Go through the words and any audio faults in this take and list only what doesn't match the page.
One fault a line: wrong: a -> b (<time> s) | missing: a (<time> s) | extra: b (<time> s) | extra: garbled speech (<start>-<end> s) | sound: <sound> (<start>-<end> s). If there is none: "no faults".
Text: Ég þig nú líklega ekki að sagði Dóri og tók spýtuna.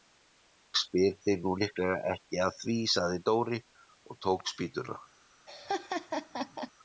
extra: spyr (0.8 s)
extra: því (2.6 s)
sound: laugh (5.5-6.7 s)